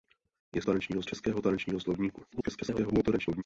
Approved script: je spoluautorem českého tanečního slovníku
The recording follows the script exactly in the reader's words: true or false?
false